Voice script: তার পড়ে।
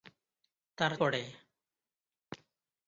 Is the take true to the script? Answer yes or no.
yes